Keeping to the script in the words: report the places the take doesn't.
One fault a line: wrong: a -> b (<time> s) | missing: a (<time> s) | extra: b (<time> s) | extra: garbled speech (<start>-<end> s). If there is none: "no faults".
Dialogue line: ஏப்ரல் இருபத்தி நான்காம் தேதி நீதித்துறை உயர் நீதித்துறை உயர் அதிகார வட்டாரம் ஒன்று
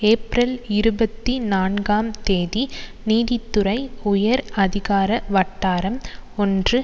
missing: நீதித்துறை உயர் (4.4 s)